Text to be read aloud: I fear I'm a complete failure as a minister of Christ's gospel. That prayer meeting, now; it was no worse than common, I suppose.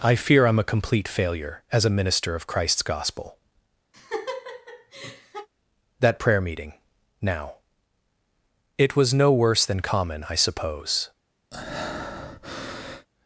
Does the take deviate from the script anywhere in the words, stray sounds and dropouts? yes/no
yes